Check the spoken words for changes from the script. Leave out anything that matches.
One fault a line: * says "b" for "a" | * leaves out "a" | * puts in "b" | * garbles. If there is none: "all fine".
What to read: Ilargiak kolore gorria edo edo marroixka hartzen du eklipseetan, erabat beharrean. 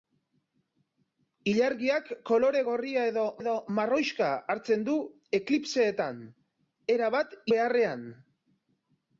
all fine